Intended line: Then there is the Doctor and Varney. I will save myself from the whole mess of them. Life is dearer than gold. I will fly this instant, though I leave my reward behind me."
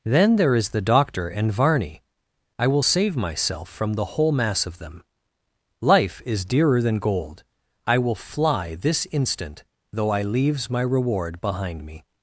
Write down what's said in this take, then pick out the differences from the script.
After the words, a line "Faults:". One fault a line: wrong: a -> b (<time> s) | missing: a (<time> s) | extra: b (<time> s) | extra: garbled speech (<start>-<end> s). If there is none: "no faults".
Then there is the Doctor and Varney. I will save myself from the whole mass of them. Life is dearer than gold. I will fly this instant, though I leaves my reward behind me."
Faults:
wrong: mess -> mass (4.3 s)
wrong: leave -> leaves (10.2 s)